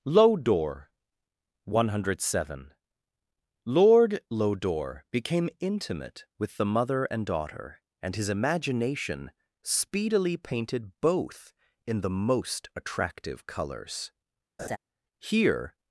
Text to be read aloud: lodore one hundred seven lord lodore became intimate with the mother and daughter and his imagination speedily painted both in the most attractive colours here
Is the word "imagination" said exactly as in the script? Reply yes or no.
yes